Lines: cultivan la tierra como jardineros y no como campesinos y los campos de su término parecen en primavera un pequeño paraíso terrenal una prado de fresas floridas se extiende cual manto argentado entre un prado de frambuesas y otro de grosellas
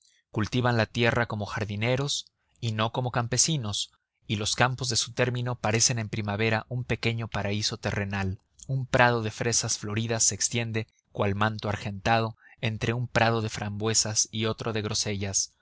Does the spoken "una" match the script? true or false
false